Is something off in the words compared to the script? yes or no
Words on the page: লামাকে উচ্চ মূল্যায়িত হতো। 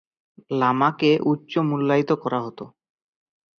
yes